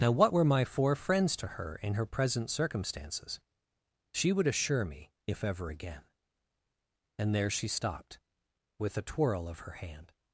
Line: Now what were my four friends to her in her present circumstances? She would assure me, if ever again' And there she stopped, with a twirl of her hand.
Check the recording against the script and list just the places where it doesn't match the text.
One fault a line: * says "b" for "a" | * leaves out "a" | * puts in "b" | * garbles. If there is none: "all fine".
all fine